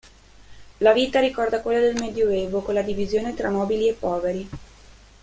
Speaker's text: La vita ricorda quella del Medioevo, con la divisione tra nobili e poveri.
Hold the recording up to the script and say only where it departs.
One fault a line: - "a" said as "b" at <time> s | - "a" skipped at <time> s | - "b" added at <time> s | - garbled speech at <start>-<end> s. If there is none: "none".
none